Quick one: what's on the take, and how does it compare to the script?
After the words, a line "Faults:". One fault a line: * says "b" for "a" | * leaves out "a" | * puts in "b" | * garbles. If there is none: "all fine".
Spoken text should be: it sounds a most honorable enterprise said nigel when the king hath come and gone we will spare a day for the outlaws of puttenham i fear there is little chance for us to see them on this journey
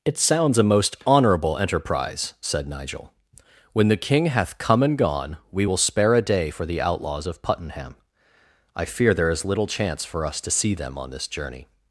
it sounds a most honorable enterprise said nigel when the king hath come and gone we will spare a day for the outlaws of puttenham i fear there is little chance for us to see them on this journey
Faults:
all fine